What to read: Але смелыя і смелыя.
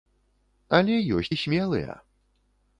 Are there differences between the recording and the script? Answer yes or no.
yes